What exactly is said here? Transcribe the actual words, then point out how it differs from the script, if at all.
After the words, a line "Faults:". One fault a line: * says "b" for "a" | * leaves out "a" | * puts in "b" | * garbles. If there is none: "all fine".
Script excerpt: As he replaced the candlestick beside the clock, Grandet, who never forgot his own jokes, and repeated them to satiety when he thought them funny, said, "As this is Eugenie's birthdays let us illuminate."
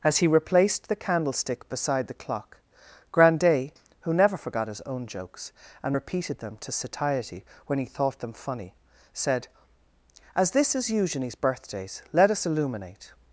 As he replaced the candlestick beside the clock, Grandet, who never forgot his own jokes, and repeated them to satiety when he thought them funny, said, "As this is Eugenie's birthdays let us illuminate."
Faults:
all fine